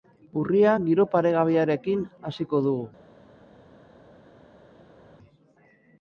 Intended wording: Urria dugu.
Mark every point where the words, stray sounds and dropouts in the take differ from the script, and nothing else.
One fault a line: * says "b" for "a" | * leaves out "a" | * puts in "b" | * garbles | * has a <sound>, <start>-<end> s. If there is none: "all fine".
* puts in "giro paregabearekin hasiko"